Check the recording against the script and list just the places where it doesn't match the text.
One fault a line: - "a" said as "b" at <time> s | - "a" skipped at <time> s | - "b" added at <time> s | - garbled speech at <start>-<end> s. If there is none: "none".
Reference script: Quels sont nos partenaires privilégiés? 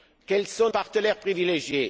- "nos" skipped at 0.7 s